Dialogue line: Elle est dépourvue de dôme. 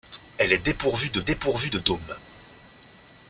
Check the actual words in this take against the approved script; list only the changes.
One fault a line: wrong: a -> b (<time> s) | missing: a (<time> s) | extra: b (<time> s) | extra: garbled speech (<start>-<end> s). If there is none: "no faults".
extra: dépourvue de (1.2 s)